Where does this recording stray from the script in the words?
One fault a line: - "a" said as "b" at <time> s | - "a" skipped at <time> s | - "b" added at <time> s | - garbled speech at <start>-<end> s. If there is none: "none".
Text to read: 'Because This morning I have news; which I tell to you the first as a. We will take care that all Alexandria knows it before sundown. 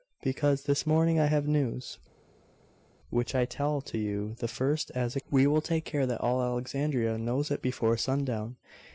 none